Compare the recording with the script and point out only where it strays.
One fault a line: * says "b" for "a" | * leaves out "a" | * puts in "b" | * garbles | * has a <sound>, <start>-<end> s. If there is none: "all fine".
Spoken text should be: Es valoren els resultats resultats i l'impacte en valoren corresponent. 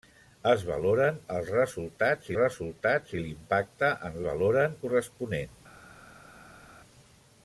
all fine